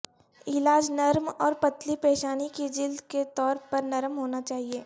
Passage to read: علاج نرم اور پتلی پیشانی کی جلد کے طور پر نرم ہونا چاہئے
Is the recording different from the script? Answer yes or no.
no